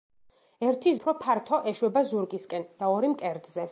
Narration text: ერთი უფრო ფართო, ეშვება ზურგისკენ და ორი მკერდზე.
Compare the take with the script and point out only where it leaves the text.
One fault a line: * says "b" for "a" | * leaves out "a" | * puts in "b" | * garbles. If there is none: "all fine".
all fine